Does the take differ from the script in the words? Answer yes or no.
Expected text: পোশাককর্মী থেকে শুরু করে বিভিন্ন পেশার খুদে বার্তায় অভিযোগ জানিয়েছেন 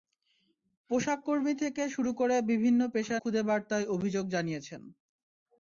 no